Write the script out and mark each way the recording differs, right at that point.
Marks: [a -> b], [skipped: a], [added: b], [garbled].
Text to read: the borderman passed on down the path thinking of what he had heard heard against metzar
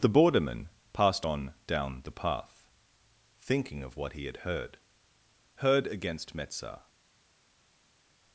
the borderman passed on down the path thinking of what he had heard heard against metzar